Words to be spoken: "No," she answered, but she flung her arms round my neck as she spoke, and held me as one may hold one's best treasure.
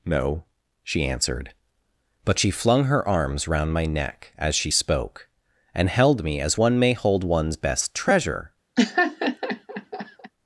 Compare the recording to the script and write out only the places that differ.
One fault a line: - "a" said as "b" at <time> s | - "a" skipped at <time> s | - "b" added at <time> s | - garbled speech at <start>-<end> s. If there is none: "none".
none